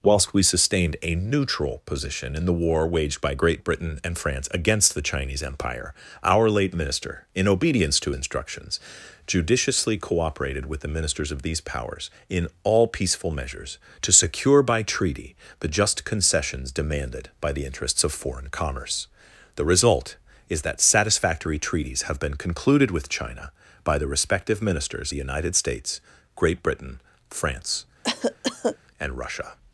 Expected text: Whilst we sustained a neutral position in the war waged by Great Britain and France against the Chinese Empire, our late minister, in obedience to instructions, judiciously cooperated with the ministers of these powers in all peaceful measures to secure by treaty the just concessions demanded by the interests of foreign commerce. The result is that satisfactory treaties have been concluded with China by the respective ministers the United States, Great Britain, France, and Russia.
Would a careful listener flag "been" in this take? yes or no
no